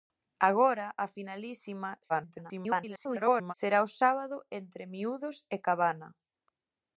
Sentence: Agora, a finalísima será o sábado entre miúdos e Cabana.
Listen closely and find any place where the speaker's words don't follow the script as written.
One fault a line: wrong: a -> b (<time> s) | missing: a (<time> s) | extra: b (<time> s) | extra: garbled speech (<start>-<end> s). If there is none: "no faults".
extra: garbled speech (2.1-3.5 s)